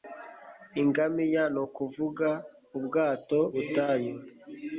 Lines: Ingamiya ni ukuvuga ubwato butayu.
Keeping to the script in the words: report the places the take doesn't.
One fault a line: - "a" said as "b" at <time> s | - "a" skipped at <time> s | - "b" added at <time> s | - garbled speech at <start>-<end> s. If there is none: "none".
none